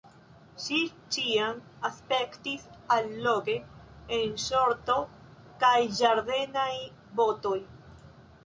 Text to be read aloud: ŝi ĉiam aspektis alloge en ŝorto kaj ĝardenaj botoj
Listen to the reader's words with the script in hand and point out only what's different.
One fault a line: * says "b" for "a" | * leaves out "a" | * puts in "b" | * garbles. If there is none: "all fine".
all fine